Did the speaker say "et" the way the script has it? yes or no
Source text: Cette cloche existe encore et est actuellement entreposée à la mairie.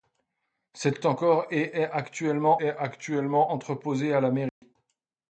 no